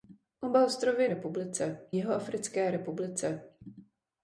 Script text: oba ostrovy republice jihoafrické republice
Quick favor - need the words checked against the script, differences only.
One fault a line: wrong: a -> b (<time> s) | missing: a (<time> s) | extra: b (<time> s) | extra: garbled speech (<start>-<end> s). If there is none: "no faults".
no faults